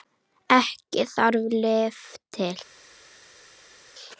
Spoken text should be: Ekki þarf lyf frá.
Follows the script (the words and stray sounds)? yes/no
no